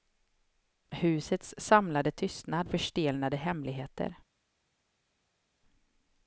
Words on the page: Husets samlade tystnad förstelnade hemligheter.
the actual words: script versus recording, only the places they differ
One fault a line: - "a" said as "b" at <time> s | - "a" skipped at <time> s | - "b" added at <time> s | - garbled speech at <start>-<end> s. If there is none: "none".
none